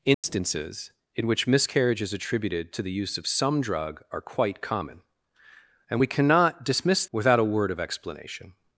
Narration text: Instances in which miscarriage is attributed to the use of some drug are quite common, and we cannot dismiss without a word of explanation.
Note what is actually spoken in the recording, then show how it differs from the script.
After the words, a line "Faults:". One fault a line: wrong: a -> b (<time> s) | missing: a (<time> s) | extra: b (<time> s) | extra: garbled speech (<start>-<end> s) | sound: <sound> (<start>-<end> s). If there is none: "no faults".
Instances in which miscarriage is attributed to the use of some drug are quite common, and we cannot dismiss without a word of explanation.
Faults:
sound: dropout (0.1-0.2 s)